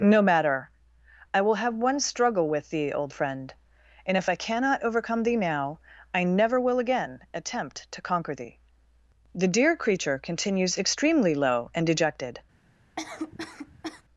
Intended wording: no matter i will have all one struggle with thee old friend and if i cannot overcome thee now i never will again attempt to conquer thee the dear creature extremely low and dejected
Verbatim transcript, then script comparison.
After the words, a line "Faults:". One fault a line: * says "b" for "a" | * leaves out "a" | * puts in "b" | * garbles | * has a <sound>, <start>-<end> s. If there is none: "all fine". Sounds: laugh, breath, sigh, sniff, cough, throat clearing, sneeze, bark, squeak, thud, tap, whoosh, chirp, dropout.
no matter i will have one struggle with thee old friend and if i cannot overcome thee now i never will again attempt to conquer thee the dear creature continues extremely low and dejected
Faults:
* leaves out "all"
* puts in "continues"
* has a cough, 13.0-14.0 s